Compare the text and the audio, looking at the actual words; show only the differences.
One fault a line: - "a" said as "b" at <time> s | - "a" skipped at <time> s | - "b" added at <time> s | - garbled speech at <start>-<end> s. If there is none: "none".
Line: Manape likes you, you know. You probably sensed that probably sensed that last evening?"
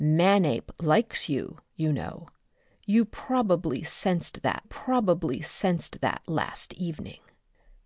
none